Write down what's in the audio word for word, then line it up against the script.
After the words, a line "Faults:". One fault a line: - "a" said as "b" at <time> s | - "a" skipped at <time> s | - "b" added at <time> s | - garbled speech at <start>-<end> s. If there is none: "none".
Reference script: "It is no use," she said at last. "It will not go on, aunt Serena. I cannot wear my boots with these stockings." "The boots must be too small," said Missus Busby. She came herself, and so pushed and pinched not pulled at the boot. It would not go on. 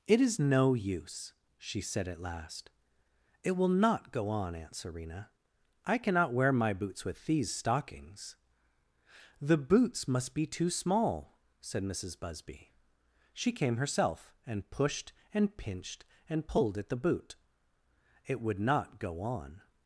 "It is no use," she said at last. "It will not go on, aunt Serena. I cannot wear my boots with these stockings." "The boots must be too small," said Missus Busby. She came herself, and pushed and pinched and pulled at the boot. It would not go on.
Faults:
- "so" skipped at 14.7 s
- "not" said as "and" at 16.3 s